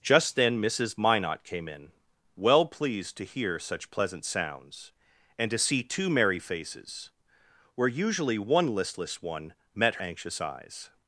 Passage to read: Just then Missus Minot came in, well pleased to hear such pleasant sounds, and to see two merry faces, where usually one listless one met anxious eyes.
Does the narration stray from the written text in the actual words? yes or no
no